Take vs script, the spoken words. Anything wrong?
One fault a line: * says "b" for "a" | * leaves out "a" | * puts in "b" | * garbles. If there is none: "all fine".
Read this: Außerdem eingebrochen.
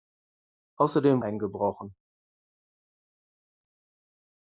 all fine